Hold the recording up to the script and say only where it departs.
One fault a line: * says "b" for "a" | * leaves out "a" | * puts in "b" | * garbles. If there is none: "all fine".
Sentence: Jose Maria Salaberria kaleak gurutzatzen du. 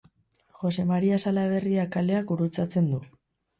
all fine